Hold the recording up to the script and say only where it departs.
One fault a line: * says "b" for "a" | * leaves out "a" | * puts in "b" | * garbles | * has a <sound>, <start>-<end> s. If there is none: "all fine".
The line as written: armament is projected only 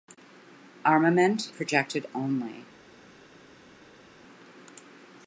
* leaves out "is"